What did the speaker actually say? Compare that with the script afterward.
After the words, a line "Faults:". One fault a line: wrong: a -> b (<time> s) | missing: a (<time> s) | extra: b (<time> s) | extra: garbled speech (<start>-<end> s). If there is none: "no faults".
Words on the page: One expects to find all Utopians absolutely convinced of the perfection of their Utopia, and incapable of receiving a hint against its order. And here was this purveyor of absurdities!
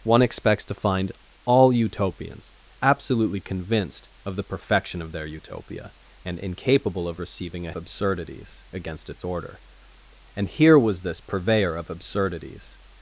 One expects to find all Utopians absolutely convinced of the perfection of their Utopia, and incapable of receiving a absurdities against its order. And here was this purveyor of absurdities!
Faults:
wrong: hint -> absurdities (7.8 s)